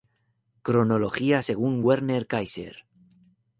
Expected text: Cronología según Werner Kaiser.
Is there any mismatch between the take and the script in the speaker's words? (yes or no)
no